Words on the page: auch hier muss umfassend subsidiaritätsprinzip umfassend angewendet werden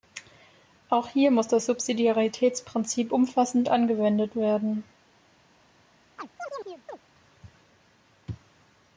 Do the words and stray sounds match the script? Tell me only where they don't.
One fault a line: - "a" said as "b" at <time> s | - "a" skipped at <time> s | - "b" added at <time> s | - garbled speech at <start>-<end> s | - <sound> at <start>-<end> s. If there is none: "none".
- "umfassend" said as "das" at 1.5 s
- chirp at 6.2-7.0 s